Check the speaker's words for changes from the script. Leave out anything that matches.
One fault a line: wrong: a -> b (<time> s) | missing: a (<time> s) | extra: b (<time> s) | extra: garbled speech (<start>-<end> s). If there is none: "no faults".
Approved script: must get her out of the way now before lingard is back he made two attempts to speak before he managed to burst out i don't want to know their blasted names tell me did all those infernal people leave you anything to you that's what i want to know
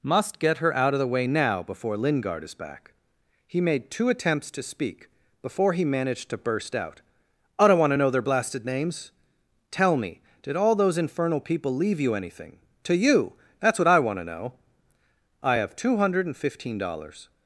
extra: i have two hundred and fifteen dollars (15.4 s)